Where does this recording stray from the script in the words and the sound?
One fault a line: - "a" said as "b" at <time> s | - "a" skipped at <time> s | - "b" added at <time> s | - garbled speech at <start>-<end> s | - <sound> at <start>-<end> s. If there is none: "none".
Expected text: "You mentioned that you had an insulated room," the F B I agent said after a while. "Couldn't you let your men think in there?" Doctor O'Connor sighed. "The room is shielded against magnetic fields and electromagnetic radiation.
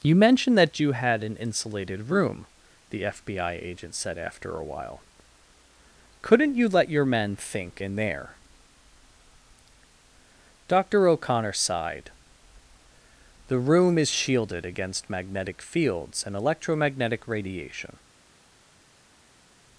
none